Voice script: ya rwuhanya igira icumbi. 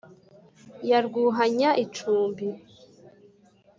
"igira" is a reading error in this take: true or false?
true